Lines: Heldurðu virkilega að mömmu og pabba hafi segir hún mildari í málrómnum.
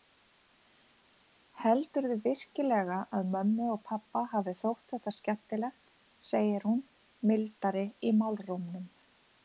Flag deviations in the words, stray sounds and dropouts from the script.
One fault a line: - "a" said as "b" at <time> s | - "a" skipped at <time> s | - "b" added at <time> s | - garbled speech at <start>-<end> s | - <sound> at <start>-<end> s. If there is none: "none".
- "þótt þetta skemmtilegt" added at 4.6 s